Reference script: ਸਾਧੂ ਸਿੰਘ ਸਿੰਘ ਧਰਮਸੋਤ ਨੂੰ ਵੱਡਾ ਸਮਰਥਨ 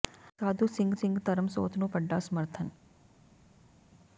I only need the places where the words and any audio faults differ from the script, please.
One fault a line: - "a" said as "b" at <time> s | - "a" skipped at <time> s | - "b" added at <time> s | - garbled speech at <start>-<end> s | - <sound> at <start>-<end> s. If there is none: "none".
none